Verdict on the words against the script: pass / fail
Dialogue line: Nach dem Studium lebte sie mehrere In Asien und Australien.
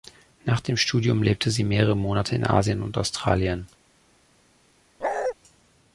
fail